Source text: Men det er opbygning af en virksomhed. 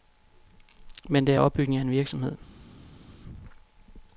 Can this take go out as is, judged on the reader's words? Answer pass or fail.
pass